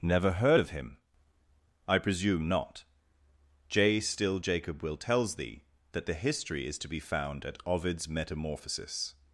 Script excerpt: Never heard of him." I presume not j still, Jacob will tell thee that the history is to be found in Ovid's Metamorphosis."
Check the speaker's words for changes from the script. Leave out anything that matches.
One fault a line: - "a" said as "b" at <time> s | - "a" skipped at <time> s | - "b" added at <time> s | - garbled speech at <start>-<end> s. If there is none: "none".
- "tell" said as "tells" at 5.0 s
- "in" said as "at" at 7.4 s